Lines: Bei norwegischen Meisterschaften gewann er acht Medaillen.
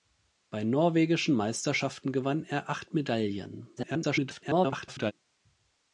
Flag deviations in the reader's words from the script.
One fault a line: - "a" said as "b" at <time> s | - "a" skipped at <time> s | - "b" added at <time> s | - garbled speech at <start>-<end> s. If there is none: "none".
- garbled speech at 3.8-5.1 s